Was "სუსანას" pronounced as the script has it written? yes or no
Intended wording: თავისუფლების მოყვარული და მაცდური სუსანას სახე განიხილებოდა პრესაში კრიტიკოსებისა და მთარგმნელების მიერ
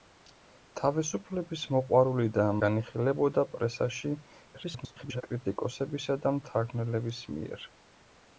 no